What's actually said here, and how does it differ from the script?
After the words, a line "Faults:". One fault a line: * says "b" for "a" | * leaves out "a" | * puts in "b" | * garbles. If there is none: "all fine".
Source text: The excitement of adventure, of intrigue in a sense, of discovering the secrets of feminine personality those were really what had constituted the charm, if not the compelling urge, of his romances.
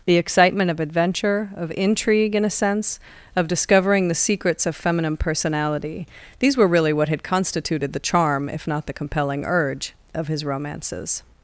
The excitement of adventure, of intrigue in a sense, of discovering the secrets of feminine personality these were really what had constituted the charm, if not the compelling urge, of his romances.
Faults:
* says "these" for "those"